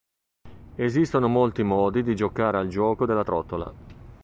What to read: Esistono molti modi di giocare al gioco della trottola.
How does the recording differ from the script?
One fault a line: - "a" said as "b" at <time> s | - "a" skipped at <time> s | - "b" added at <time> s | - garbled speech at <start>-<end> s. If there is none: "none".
none